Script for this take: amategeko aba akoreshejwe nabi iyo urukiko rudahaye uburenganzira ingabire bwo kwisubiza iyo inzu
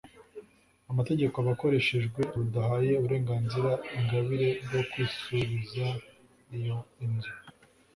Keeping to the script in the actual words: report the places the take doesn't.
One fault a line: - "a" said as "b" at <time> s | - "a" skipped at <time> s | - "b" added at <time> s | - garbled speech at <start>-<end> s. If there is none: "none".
- "nabi iyo urukiko" skipped at 2.2 s